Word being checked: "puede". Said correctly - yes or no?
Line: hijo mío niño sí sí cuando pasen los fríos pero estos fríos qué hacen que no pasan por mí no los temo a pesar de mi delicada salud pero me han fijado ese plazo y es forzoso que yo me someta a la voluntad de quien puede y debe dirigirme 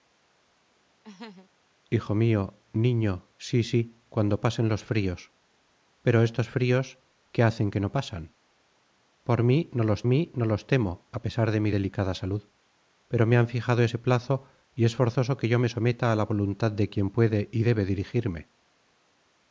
yes